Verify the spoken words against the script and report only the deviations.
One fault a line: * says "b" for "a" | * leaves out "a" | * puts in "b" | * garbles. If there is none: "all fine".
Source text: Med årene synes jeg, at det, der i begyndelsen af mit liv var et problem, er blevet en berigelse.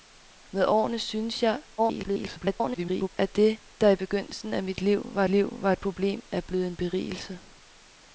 * garbles
* puts in "liv var"